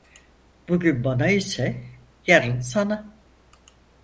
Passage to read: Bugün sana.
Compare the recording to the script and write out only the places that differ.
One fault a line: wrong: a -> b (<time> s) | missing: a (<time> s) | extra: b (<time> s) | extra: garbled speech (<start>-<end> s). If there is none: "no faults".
extra: bana ise yarın (1.0 s)